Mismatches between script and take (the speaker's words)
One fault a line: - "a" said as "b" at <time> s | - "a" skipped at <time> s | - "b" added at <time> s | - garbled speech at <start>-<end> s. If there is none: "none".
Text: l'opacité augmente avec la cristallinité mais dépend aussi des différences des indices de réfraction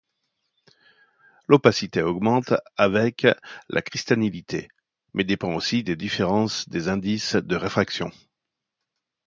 none